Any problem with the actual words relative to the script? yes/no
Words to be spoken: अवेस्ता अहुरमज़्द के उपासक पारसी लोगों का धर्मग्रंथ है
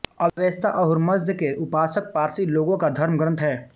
no